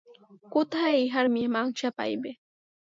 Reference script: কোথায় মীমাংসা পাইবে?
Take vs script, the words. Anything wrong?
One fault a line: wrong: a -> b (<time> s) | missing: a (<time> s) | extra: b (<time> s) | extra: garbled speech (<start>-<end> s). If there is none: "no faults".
extra: ইহার (1.0 s)